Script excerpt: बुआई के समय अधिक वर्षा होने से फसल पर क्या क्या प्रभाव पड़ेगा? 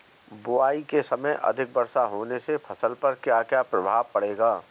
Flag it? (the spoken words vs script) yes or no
no